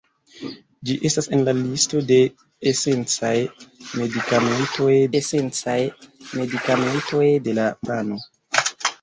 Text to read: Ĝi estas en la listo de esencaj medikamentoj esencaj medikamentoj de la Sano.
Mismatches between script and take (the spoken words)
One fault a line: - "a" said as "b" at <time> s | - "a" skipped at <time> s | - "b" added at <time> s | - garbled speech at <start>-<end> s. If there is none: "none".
none